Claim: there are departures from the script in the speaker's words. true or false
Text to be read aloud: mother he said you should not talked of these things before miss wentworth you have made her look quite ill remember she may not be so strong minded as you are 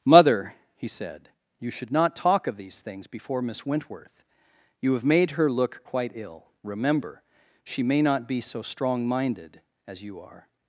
true